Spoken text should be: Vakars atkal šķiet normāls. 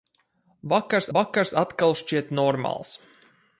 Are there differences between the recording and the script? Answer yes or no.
yes